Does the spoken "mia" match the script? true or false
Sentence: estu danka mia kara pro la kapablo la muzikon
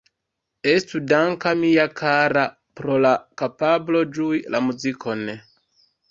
true